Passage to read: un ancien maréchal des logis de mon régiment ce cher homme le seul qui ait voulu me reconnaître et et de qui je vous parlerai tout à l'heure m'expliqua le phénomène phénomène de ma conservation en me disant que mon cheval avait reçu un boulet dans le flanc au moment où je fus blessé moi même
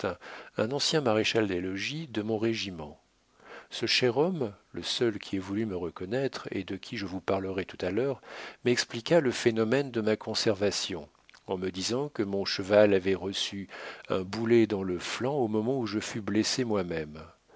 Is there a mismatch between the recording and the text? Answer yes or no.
yes